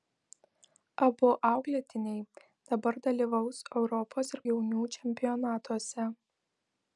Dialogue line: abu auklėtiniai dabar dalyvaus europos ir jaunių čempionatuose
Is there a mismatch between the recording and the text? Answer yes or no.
no